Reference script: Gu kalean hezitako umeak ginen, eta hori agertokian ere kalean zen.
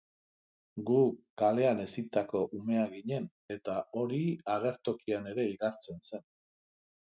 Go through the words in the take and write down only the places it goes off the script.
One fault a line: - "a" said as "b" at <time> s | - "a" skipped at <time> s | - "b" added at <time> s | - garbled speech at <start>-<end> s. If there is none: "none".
- "kalean" said as "igartzen" at 5.6 s